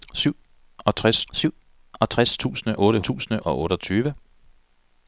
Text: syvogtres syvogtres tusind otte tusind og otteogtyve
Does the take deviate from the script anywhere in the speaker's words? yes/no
no